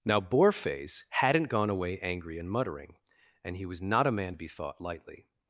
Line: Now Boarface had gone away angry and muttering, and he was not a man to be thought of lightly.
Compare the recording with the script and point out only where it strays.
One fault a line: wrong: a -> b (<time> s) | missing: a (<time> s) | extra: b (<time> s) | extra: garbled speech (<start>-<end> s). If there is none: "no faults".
wrong: had -> hadn't (1.1 s)
missing: of (4.8 s)